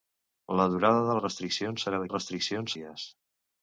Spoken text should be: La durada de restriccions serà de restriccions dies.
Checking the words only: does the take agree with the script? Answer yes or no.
yes